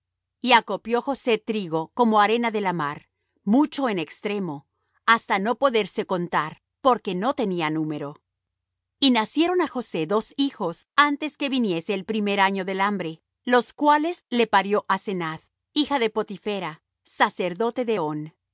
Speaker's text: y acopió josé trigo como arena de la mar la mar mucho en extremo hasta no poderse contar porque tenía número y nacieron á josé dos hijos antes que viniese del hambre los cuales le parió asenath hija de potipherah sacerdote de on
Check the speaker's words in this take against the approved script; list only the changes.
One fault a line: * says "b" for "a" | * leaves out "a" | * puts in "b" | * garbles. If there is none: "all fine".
* leaves out "la mar"
* puts in "no"
* puts in "el primer año"